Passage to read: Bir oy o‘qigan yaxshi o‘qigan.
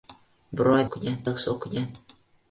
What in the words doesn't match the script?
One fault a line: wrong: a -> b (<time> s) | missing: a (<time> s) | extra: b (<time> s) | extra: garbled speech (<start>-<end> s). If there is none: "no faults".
no faults